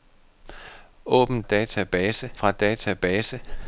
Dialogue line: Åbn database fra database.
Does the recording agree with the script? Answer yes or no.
yes